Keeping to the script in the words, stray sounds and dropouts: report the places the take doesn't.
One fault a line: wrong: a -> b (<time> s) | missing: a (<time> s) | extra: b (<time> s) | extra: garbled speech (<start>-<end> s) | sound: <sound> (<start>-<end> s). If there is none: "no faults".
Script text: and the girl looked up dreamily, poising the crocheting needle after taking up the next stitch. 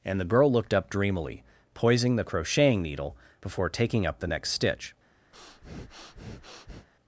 wrong: after -> before (3.4 s)
sound: breath (5.3-6.9 s)